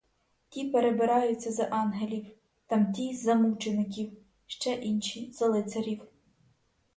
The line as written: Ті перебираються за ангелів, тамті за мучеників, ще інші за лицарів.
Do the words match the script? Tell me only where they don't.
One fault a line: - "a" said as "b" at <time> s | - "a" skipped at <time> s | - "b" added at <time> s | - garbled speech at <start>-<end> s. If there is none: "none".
none